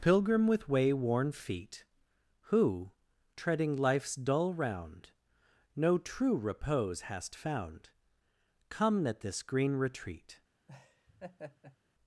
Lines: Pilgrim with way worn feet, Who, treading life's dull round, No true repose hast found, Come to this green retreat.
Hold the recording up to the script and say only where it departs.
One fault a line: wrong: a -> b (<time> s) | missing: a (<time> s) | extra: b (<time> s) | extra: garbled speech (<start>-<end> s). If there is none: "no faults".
wrong: to -> at (9.1 s)